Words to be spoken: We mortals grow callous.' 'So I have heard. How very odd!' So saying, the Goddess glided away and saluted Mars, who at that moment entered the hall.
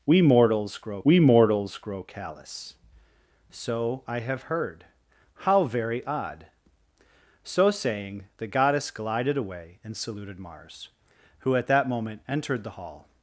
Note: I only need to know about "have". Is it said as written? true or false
true